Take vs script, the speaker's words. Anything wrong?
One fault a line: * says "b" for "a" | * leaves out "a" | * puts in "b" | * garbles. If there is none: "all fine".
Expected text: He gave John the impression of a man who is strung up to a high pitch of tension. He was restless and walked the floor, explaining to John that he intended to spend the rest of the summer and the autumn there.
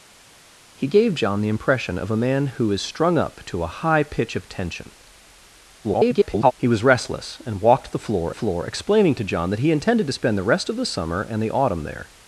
* garbles
* puts in "floor"